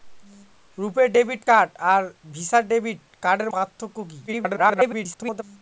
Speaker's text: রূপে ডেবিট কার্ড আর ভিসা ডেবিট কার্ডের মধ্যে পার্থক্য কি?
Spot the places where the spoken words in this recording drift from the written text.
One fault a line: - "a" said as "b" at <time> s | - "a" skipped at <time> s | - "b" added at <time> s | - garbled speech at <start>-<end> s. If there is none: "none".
- "মধ্যে" skipped at 3.5 s
- garbled speech at 4.3-5.4 s